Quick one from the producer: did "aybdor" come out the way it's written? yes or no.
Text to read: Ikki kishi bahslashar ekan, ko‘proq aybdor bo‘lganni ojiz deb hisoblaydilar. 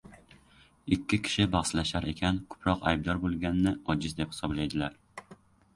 yes